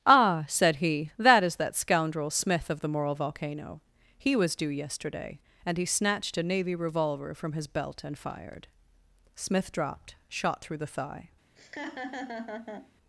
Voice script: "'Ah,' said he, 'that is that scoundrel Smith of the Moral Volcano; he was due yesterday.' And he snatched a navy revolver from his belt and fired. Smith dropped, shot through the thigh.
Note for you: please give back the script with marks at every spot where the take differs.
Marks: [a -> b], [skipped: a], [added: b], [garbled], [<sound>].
"'Ah,' said he, 'that is that scoundrel Smith of the Moral Volcano; he was due yesterday.' And he snatched a navy revolver from his belt and fired. Smith dropped, shot through the thigh. [laugh]